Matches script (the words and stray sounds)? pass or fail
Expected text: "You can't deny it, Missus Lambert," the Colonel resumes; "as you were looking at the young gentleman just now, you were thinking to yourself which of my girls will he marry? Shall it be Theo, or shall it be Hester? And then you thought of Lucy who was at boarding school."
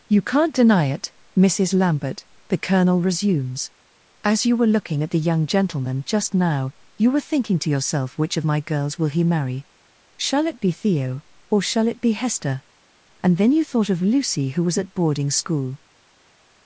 pass